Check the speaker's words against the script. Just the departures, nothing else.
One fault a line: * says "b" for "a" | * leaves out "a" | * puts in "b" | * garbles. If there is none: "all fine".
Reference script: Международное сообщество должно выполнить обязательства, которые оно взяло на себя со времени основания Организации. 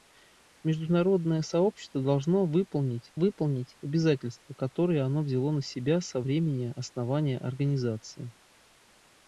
* puts in "выполнить"